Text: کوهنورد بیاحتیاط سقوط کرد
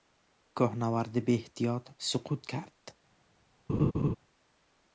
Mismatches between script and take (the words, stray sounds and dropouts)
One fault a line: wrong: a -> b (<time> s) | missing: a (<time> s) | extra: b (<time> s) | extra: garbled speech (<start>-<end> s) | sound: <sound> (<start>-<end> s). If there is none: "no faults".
sound: laugh (3.7-4.2 s)